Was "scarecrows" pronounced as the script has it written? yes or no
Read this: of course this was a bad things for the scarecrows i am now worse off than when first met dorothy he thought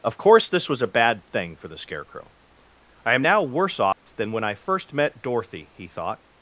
no